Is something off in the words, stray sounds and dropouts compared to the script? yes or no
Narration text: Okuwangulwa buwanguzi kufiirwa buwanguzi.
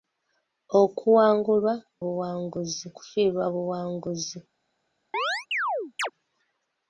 yes